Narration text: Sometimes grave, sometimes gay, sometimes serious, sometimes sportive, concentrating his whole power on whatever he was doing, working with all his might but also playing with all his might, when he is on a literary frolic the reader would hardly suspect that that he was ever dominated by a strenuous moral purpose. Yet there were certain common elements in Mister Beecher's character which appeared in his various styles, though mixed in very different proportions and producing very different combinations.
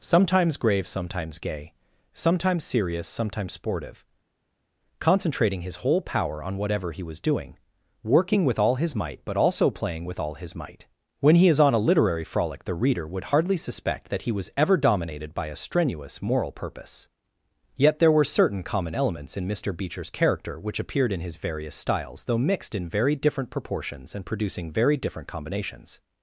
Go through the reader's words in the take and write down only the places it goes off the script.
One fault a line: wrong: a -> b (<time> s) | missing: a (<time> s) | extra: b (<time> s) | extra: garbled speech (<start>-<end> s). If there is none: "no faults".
missing: that (14.2 s)